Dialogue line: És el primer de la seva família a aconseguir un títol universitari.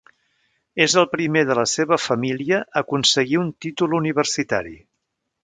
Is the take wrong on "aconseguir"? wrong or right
right